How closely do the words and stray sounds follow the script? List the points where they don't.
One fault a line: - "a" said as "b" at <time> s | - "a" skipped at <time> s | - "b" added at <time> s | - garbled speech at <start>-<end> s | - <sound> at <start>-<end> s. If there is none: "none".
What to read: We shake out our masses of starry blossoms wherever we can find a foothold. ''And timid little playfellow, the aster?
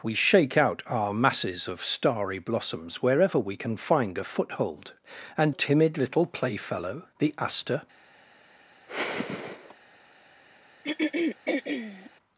- sigh at 8.9-9.8 s
- throat clearing at 10.8-12.1 s